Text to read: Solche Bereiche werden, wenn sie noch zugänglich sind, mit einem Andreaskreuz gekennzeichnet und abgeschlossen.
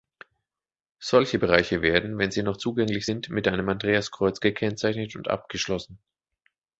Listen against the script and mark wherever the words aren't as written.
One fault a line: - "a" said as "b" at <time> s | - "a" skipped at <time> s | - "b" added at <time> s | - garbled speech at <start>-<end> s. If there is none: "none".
none